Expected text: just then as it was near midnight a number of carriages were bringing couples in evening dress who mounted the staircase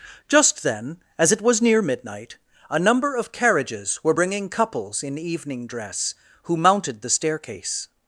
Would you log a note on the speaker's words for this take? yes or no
no